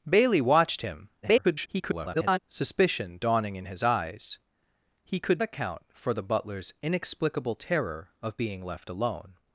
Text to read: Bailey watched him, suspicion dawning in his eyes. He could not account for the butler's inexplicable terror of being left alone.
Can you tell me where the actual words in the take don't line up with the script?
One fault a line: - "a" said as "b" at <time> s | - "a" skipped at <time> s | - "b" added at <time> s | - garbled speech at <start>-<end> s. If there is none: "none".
- garbled speech at 1.2-2.4 s
- "not" skipped at 5.4 s